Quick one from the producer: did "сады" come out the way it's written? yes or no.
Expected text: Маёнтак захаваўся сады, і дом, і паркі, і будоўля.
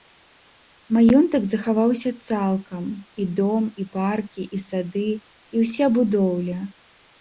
no